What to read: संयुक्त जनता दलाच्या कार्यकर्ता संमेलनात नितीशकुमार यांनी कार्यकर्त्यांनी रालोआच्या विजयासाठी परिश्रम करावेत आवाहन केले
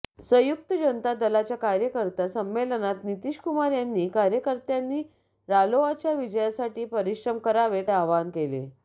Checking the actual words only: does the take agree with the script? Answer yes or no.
yes